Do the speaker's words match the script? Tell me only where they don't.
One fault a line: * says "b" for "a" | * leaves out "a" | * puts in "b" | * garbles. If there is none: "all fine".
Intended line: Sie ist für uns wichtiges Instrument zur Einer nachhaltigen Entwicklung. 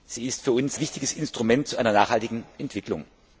all fine